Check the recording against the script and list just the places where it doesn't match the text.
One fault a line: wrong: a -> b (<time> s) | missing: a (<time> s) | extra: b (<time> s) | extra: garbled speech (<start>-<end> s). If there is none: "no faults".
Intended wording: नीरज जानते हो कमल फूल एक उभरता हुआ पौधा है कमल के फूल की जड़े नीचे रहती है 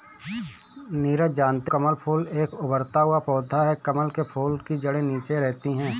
missing: हो (1.7 s)